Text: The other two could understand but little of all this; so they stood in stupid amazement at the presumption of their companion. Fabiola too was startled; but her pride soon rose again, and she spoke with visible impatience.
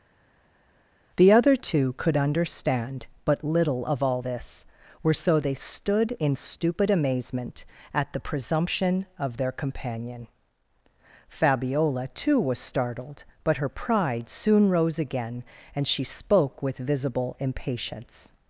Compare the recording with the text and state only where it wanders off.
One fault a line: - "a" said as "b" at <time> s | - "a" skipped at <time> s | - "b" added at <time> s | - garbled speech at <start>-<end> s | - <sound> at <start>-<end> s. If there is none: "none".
- "were" added at 5.0 s